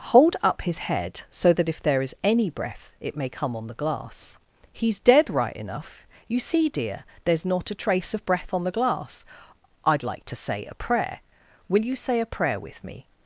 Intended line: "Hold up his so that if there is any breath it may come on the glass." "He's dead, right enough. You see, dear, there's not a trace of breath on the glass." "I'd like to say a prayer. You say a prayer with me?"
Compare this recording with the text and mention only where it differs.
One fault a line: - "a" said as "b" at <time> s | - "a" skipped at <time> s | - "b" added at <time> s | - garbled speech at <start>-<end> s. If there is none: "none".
- "head" added at 0.8 s
- "Will" added at 11.7 s